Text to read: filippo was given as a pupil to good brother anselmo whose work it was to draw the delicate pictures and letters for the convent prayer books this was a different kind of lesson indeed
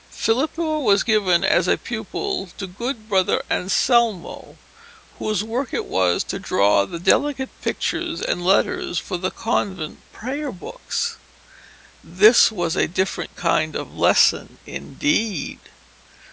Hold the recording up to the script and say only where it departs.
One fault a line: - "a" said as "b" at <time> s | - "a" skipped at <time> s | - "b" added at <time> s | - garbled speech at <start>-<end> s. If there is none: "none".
none